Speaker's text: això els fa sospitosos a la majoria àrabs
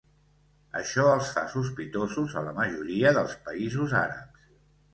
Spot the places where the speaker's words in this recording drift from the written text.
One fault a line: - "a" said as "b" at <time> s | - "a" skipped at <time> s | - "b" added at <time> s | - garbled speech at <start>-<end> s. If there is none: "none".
- "dels països" added at 3.2 s